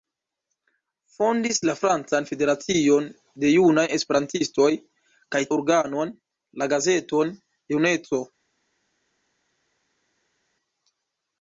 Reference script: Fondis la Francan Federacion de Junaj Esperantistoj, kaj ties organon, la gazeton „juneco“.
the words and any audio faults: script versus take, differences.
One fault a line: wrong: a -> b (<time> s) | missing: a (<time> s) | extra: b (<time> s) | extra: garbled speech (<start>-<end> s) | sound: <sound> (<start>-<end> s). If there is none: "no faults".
missing: ties (5.4 s)